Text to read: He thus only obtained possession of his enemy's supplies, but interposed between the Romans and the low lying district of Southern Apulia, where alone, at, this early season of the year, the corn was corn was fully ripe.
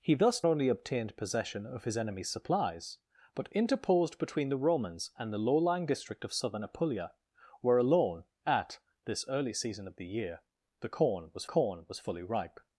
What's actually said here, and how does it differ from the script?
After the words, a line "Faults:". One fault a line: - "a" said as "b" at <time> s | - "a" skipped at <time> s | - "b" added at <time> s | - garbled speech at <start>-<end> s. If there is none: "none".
He thus only obtained possession of his enemy's supplies, but interposed between the Romans and the low lying district of Southern Apulia, where alone, at, this early season of the year, the corn was corn was fully ripe.
Faults:
none